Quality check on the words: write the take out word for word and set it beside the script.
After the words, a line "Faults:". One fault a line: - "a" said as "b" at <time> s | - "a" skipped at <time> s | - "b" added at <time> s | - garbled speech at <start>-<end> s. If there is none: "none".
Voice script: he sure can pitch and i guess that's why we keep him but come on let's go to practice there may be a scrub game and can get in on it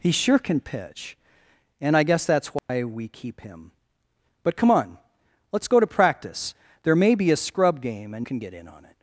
he sure can pitch and i guess that's why we keep him but come on let's go to practice there may be a scrub game and can get in on it
Faults:
none